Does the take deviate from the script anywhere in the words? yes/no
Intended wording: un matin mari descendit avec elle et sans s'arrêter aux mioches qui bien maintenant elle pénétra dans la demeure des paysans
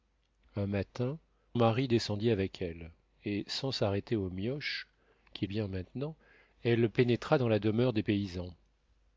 no